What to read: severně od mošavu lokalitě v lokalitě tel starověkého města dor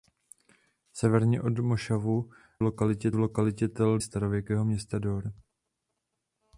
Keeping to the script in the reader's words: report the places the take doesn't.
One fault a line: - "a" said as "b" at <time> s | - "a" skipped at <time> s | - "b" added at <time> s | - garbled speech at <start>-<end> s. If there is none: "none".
none